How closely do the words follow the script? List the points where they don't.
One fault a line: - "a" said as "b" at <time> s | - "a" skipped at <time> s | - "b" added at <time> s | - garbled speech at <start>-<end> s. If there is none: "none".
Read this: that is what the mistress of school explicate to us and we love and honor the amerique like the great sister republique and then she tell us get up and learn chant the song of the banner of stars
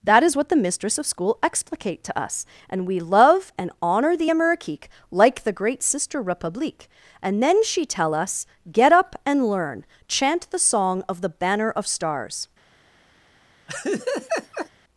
none